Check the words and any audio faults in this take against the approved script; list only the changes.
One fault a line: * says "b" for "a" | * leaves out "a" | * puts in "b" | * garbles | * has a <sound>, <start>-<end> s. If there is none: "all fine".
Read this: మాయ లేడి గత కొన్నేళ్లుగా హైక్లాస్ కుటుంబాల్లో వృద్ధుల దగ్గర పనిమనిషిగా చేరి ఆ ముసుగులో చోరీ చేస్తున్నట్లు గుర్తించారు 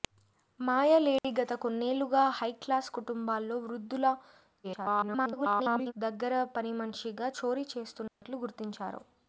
* has a dropout, 1.2-1.2 s
* garbles
* leaves out "చేరి ఆ ముసుగులో"
* has a dropout, 8.1-8.2 s